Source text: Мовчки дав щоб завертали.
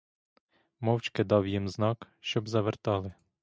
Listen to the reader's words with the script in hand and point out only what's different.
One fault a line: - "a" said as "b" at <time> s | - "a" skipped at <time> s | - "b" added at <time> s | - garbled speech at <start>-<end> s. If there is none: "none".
- "їм знак" added at 1.5 s